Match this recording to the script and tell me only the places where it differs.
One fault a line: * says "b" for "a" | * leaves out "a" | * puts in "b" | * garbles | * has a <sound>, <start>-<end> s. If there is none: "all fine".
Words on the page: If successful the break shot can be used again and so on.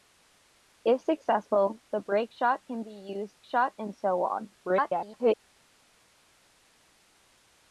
* says "shot" for "again"
* garbles